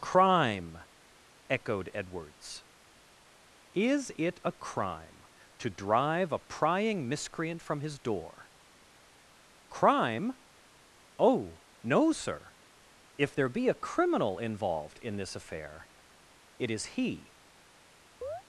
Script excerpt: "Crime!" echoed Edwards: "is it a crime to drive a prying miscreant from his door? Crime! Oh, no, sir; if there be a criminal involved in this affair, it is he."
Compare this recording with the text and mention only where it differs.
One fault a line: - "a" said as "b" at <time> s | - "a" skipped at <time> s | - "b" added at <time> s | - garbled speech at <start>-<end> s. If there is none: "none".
none